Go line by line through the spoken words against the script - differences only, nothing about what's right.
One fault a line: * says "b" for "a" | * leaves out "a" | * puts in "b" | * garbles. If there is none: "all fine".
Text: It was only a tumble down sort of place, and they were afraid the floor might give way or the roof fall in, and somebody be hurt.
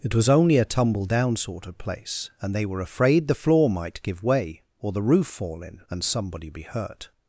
all fine